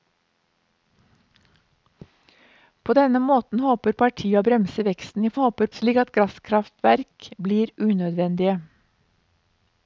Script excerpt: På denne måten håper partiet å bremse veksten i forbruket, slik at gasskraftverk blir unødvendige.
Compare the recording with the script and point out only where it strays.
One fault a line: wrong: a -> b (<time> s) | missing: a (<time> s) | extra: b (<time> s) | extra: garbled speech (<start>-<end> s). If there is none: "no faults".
wrong: forbruket -> håper (5.4 s)